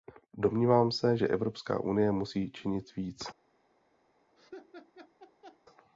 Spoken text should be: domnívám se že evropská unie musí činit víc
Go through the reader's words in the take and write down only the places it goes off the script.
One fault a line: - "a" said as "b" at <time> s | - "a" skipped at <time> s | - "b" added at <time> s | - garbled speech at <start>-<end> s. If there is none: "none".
none